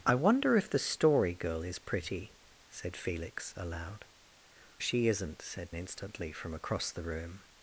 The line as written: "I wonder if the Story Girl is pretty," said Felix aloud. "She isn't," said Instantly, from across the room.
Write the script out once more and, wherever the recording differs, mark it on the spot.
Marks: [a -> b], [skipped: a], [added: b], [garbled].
"I wonder if the Story Girl is pretty," said Felix aloud. "She isn't," said Instantly, from across the room.